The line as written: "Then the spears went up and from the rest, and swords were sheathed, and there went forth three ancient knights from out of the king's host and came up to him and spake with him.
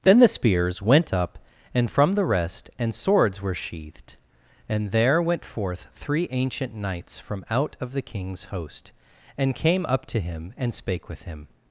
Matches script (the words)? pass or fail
pass